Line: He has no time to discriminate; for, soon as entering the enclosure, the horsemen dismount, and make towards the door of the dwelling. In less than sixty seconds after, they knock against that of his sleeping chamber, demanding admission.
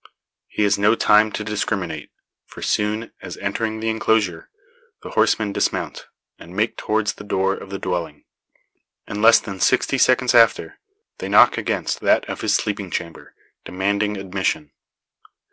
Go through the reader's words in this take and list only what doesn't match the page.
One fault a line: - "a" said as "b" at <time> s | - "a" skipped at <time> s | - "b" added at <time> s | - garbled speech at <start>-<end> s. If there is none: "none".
none